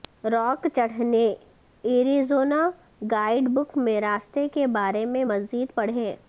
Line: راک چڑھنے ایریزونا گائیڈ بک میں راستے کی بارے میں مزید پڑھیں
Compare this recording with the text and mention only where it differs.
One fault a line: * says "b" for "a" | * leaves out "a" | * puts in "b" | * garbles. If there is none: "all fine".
* says "کے" for "کی"